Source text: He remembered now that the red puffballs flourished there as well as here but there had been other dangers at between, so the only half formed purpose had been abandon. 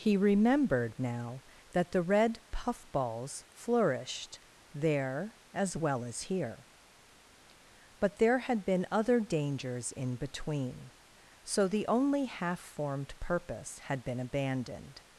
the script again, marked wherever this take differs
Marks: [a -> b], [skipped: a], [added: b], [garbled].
He remembered now that the red puffballs flourished there as well as here but there had been other dangers [at -> in] between, so the only half formed purpose had been [abandon. -> abandoned]